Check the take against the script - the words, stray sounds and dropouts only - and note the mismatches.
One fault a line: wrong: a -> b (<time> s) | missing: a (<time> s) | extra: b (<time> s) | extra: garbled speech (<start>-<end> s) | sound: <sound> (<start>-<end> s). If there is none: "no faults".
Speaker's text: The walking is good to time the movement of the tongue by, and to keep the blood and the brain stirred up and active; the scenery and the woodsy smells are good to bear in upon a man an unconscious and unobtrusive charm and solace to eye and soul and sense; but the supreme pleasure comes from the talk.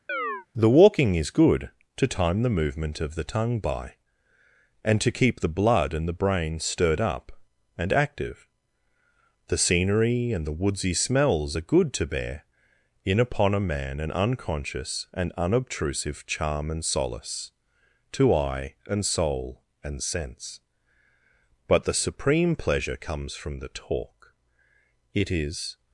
sound: chirp (0.1-0.5 s)
extra: It is (25.1 s)